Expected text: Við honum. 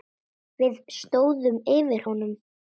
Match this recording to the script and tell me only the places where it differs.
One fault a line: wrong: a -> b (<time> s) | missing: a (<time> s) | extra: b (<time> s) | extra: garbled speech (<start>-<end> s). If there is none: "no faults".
extra: stóðum yfir (0.9 s)